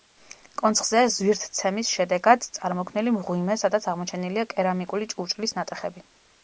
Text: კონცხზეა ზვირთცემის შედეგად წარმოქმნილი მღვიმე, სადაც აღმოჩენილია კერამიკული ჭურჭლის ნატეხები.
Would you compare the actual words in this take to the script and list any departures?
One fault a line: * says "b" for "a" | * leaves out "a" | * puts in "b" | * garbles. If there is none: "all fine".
all fine